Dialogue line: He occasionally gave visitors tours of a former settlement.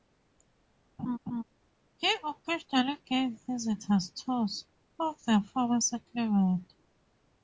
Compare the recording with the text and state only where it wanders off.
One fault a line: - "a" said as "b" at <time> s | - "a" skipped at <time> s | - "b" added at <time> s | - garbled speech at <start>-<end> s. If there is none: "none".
- "a" said as "the" at 5.2 s